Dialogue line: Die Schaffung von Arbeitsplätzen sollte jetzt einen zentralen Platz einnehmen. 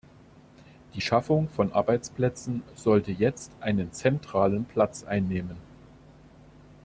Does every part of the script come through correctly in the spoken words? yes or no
yes